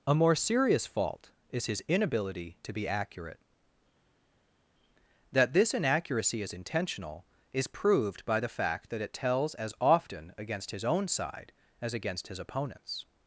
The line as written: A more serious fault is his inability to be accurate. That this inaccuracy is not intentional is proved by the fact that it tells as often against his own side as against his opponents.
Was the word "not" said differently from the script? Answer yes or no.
yes